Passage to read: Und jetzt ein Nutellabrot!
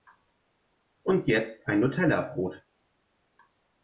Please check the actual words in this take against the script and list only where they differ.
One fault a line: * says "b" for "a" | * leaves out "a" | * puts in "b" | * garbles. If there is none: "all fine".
all fine